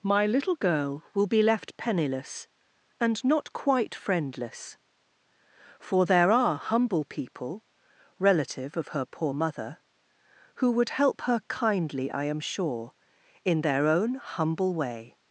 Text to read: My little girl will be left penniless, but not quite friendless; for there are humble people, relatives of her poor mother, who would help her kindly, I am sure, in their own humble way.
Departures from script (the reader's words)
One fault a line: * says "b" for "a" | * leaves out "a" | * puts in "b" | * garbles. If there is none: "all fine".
* says "and" for "but"
* says "relative" for "relatives"